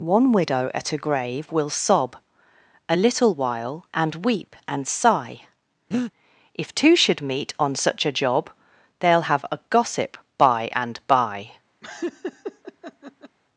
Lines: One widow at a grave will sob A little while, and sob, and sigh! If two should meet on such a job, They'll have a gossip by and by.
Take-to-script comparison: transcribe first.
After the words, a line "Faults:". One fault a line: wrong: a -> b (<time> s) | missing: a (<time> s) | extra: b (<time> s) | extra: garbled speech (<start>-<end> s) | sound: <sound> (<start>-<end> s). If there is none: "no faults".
One widow at a grave will sob A little while, and weep, and sigh! If two should meet on such a job, They'll have a gossip by and by.
Faults:
wrong: sob -> weep (4.3 s)
sound: breath (5.9-6.1 s)
sound: laugh (11.8-13.4 s)